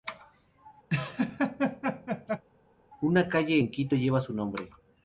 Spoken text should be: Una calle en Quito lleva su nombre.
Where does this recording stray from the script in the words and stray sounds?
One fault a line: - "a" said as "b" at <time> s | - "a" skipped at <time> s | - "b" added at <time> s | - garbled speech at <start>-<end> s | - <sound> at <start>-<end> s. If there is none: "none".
- laugh at 0.9-2.4 s